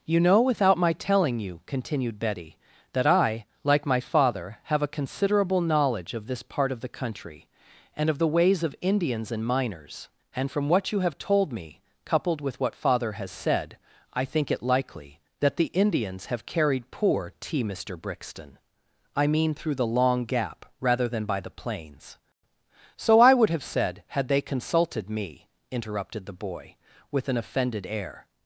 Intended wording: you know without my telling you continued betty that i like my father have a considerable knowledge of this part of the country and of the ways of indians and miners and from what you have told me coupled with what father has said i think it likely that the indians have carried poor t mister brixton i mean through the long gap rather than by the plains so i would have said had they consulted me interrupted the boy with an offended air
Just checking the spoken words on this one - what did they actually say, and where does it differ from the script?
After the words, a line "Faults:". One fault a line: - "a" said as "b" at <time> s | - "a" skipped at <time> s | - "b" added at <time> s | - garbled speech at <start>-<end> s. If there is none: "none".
you know without my telling you continued betty that i like my father have a considerable knowledge of this part of the country and of the ways of indians and miners and from what you have told me coupled with what father has said i think it likely that the indians have carried poor t mister brixton i mean through the long gap rather than by the plains so i would have said had they consulted me interrupted the boy with an offended air
Faults:
none